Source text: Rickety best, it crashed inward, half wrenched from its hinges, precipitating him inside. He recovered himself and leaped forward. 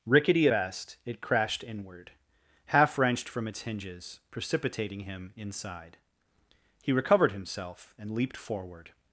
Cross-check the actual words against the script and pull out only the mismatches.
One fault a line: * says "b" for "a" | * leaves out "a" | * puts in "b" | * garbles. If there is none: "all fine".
all fine